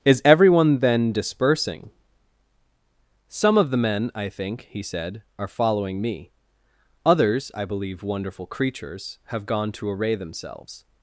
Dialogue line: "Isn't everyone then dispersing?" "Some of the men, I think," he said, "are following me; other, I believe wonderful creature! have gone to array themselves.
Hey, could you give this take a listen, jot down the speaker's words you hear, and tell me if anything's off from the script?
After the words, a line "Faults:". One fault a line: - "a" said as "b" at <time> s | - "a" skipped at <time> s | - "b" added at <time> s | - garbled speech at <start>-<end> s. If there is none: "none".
"Is everyone then dispersing?" "Some of the men, I think," he said, "are following me; others, I believe wonderful creatures! have gone to array themselves.
Faults:
- "Isn't" said as "Is" at 0.0 s
- "other" said as "others" at 7.0 s
- "creature" said as "creatures" at 8.5 s